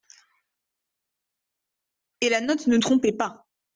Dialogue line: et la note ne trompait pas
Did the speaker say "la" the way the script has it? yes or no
yes